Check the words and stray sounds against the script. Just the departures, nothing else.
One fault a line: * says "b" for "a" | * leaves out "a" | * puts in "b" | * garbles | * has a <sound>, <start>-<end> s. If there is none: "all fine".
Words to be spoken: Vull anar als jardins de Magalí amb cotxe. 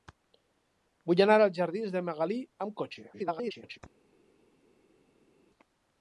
* garbles